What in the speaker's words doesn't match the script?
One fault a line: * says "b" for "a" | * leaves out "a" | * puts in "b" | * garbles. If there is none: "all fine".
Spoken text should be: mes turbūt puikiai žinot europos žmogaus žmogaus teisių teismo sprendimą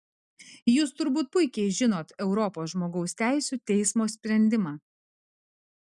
* says "jūs" for "mes"
* leaves out "žmogaus"